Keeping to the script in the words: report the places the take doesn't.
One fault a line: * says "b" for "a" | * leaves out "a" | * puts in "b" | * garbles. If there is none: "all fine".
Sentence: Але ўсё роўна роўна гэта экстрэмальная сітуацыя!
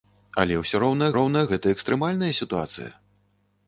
all fine